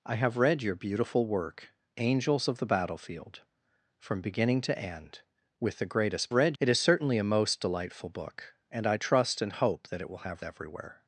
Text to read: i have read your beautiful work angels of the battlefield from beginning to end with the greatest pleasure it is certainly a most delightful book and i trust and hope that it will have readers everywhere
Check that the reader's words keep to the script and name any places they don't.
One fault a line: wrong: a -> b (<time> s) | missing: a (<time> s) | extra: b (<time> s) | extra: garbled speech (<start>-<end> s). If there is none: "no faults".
wrong: pleasure -> read (6.3 s)
missing: readers (10.4 s)